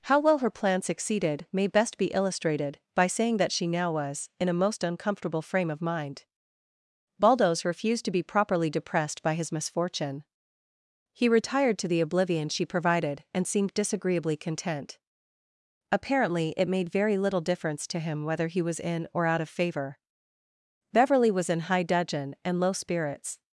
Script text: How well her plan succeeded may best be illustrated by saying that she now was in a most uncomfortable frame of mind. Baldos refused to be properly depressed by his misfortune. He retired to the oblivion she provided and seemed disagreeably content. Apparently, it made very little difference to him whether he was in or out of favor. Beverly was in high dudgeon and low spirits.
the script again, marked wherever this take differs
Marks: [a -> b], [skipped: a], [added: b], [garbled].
How well her plan succeeded may best be illustrated by saying that she now was in a most uncomfortable frame of mind. Baldos refused to be properly depressed by his misfortune. He retired to the oblivion she provided and seemed disagreeably content. Apparently, it made very little difference to him whether he was in or out of favor. Beverly was in high dudgeon and low spirits.